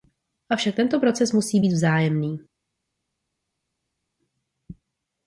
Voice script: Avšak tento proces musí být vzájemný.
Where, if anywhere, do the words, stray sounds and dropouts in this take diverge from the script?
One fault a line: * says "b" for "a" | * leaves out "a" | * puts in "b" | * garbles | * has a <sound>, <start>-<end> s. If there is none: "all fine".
all fine